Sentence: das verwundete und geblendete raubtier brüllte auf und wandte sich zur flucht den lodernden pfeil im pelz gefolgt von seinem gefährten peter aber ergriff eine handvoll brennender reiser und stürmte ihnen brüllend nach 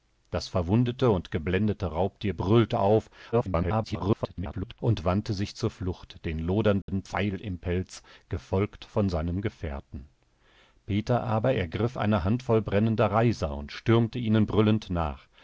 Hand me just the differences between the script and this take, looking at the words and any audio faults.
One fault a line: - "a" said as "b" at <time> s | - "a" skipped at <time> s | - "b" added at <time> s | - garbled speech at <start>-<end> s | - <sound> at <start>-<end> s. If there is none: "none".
- garbled speech at 3.3-4.8 s
- dropout at 6.8-6.9 s